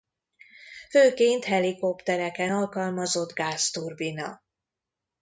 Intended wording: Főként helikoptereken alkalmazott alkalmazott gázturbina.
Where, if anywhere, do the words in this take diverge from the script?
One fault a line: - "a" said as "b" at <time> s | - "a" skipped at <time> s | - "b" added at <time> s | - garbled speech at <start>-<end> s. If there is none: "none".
- "alkalmazott" skipped at 3.3 s